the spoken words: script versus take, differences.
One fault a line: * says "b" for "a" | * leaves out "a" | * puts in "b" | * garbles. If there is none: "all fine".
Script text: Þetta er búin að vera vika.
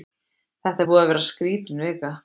* puts in "skrítin"